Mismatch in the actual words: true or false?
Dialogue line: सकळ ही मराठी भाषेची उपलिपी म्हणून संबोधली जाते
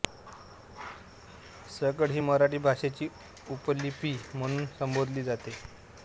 false